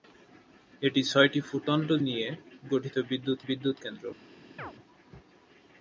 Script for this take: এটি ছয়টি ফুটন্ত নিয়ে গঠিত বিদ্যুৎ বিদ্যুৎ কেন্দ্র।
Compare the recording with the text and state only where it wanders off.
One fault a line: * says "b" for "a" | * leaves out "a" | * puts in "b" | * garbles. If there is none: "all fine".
all fine